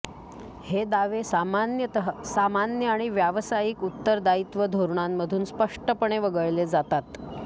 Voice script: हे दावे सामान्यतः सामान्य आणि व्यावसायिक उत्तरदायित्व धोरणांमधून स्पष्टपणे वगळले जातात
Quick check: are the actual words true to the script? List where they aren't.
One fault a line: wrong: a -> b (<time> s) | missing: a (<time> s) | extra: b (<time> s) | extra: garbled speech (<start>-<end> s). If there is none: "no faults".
no faults